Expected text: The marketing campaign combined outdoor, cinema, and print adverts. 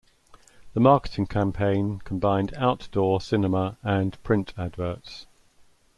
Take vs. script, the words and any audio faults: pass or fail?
pass